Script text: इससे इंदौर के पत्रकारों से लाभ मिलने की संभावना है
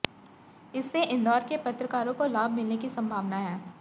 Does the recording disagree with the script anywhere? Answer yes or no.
yes